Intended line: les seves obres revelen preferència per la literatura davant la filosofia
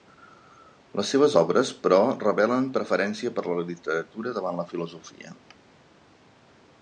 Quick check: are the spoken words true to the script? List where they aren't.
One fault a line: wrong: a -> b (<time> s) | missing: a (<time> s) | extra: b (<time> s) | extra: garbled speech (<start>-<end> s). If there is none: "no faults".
extra: però (1.9 s)